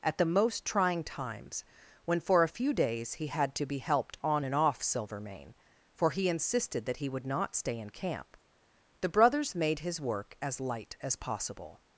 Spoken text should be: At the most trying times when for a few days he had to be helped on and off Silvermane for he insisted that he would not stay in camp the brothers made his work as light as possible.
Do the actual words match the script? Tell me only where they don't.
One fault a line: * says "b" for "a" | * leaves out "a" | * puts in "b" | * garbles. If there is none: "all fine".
all fine